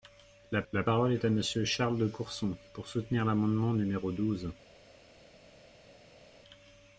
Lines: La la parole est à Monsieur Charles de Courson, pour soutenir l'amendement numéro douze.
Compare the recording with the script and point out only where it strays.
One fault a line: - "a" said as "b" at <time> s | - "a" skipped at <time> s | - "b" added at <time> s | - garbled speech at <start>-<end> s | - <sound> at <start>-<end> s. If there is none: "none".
none